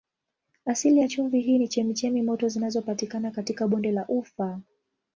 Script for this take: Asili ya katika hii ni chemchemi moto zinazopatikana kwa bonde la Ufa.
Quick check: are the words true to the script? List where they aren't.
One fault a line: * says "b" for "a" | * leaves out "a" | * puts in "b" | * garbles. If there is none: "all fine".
* says "chumvi" for "katika"
* says "katika" for "kwa"